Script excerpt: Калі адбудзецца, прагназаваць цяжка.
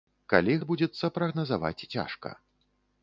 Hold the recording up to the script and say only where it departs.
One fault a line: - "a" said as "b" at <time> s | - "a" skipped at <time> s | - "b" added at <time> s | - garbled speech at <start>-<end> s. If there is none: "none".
none